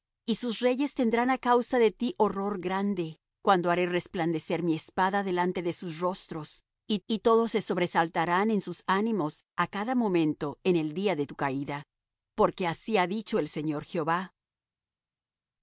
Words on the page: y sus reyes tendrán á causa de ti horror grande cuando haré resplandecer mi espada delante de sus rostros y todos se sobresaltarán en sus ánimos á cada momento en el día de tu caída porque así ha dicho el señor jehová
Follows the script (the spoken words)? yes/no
no